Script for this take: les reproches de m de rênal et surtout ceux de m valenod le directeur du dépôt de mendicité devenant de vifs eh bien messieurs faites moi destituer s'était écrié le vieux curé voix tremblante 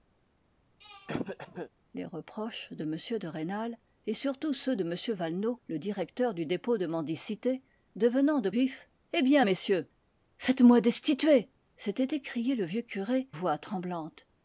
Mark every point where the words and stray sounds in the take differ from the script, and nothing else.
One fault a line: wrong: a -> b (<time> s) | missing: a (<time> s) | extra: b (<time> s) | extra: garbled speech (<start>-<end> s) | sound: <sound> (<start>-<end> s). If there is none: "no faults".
sound: throat clearing (0.8-1.7 s)